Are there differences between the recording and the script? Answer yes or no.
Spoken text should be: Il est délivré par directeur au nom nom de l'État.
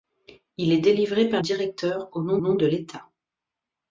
no